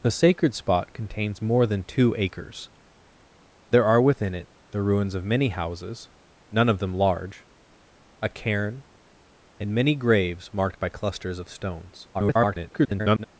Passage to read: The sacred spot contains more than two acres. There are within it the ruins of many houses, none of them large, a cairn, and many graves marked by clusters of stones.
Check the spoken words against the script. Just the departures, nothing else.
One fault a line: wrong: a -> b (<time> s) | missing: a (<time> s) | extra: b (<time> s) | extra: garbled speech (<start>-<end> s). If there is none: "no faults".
extra: garbled speech (12.1-13.2 s)